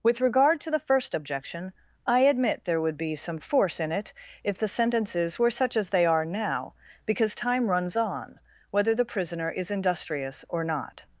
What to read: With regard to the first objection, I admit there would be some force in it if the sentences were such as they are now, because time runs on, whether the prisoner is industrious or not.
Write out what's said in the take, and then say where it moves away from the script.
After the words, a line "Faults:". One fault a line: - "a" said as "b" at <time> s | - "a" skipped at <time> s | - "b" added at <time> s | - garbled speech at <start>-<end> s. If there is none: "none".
With regard to the first objection, I admit there would be some force in it if the sentences were such as they are now, because time runs on, whether the prisoner is industrious or not.
Faults:
none